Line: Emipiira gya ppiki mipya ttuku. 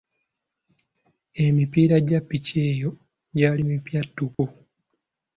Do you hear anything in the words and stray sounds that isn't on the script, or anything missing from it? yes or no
yes